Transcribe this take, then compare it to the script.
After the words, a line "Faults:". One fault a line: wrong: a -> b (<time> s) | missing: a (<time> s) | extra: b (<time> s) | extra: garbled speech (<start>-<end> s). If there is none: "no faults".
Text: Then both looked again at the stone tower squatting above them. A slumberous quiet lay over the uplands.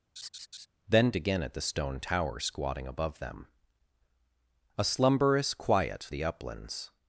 Then again at the stone tower squatting above them. A slumberous quiet the uplands.
Faults:
missing: both looked (1.1 s)
missing: lay over (6.1 s)